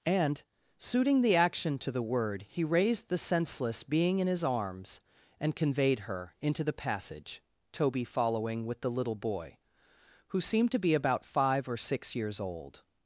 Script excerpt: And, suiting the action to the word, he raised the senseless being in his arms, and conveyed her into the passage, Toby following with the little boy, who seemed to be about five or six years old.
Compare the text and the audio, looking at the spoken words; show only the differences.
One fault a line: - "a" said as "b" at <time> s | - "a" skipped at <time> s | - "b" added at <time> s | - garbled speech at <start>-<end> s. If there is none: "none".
none